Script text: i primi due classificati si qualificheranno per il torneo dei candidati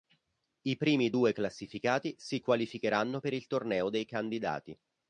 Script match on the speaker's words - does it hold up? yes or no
yes